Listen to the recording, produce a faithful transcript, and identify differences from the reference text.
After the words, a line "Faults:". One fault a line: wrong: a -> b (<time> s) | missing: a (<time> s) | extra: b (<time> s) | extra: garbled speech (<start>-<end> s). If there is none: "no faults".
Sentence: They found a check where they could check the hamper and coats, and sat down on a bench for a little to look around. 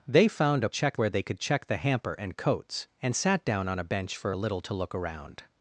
They found a check where they could check the hamper and coats, and sat down on a bench for a little to look around.
Faults:
no faults